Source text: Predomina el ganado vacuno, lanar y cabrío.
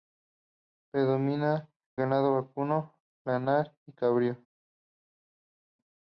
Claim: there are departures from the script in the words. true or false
true